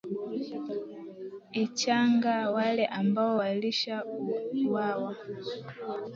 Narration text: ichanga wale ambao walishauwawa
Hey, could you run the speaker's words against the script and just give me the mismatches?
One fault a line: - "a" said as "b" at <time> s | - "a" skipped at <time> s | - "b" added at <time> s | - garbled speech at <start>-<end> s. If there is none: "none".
none